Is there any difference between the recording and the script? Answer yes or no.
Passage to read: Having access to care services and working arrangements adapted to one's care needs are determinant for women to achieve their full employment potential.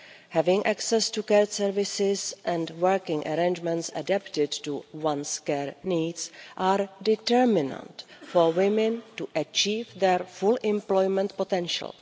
no